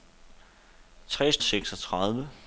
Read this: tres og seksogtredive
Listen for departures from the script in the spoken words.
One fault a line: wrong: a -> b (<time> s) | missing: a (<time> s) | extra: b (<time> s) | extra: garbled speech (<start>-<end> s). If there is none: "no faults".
no faults